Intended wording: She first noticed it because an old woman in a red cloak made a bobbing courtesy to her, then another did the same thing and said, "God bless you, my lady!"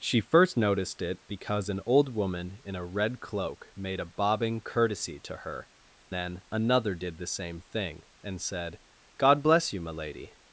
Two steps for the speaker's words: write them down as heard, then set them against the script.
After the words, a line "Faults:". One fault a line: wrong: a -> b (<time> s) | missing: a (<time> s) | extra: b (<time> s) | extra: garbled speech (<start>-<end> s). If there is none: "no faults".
She first noticed it because an old woman in a red cloak made a bobbing courtesy to her, then another did the same thing and said, "God bless you, my lady!"
Faults:
no faults